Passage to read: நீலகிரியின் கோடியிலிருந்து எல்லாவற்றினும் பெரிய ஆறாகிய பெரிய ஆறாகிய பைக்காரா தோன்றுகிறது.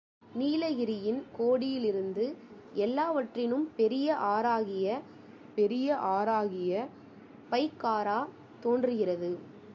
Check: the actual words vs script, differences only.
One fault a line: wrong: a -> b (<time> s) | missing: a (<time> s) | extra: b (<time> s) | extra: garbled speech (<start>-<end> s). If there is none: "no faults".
no faults